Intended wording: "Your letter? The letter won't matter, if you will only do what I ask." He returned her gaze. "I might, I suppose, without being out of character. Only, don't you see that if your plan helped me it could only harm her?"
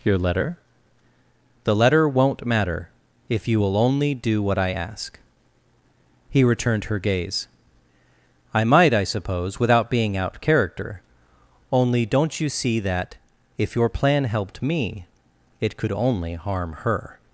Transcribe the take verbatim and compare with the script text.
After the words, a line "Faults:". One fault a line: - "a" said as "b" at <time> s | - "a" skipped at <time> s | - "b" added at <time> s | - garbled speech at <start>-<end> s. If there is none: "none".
"Your letter? The letter won't matter, if you will only do what I ask." He returned her gaze. "I might, I suppose, without being out character. Only, don't you see that if your plan helped me it could only harm her?"
Faults:
- "of" skipped at 10.4 s